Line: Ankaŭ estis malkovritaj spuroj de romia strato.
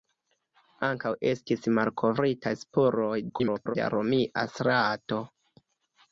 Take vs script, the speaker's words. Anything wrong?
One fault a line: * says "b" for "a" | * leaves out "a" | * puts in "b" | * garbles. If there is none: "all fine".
* garbles